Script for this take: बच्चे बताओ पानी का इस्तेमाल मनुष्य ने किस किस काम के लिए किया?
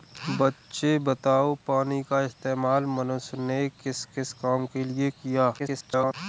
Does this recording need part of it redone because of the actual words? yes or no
yes